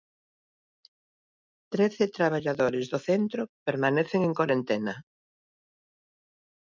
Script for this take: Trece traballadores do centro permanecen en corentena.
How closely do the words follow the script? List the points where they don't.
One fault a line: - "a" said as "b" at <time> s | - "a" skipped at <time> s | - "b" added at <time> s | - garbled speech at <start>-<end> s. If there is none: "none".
none